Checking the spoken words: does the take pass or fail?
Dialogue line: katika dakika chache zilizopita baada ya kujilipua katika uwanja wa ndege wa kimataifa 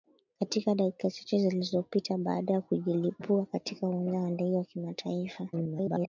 fail